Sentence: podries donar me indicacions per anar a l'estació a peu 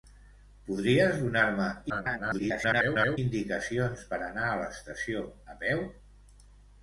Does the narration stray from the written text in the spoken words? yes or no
yes